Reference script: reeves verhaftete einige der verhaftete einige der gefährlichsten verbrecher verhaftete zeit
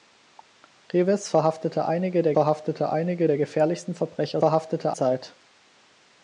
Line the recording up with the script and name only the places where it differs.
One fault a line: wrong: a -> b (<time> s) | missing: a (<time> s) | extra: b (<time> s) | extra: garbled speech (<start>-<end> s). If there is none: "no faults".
no faults